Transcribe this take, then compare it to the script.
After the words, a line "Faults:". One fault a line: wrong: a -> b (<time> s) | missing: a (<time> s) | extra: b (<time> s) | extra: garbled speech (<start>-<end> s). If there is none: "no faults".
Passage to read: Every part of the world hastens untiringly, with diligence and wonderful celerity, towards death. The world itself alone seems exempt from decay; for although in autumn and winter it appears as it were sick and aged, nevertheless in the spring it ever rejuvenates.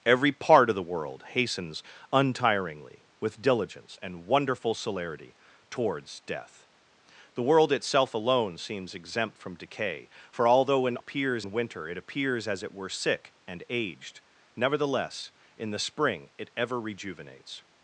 Every part of the world hastens untiringly, with diligence and wonderful celerity, towards death. The world itself alone seems exempt from decay; for although in appears and winter it appears as it were sick and aged, nevertheless in the spring it ever rejuvenates.
Faults:
wrong: autumn -> appears (11.0 s)